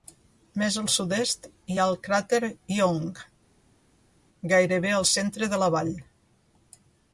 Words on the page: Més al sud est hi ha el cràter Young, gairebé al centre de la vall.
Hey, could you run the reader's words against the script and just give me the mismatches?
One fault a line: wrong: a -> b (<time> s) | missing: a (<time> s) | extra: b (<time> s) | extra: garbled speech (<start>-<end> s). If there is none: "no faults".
no faults